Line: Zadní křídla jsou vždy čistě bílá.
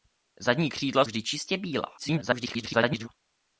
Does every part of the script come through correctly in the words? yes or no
no